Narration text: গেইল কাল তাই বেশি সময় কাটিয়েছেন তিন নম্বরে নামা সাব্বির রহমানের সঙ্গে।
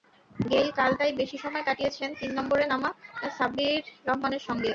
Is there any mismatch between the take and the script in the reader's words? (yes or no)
no